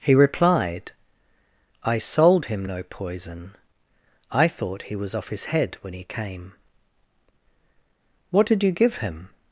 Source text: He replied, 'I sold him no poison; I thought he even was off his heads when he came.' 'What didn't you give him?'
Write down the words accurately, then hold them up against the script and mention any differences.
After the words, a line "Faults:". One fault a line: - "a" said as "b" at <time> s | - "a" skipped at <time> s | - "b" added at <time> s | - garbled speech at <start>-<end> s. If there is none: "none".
He replied, 'I sold him no poison; I thought he was off his head when he came.' 'What did you give him?'
Faults:
- "even" skipped at 5.0 s
- "heads" said as "head" at 5.4 s
- "didn't" said as "did" at 8.5 s